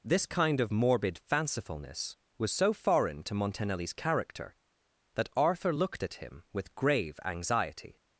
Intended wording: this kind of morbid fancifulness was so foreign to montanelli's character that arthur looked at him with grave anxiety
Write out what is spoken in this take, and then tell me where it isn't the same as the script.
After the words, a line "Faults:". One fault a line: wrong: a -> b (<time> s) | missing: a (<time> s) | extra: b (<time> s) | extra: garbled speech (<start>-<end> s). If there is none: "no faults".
this kind of morbid fancifulness was so foreign to montanelli's character that arthur looked at him with grave anxiety
Faults:
no faults